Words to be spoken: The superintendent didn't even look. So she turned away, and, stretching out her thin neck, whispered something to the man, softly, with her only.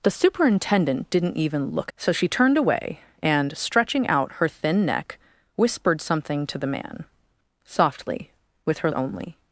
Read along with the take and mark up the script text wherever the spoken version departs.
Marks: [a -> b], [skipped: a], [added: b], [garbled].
The superintendent didn't even look. So she turned away, and, stretching out her thin neck, whispered something to the man, softly, with her only.